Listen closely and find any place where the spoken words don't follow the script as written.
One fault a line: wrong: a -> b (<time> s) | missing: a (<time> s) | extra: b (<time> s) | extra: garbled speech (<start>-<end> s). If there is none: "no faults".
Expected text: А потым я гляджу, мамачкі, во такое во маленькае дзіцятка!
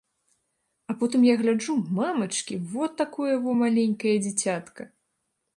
no faults